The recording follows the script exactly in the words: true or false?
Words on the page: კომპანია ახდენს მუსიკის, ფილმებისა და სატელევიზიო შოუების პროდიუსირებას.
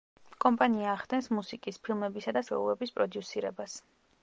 false